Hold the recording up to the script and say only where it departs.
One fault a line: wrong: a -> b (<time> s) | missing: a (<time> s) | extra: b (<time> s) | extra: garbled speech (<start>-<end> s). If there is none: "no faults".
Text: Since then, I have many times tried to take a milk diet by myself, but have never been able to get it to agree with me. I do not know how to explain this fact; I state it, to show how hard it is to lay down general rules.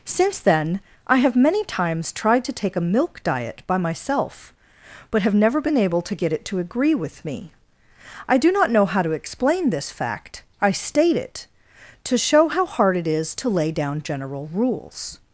no faults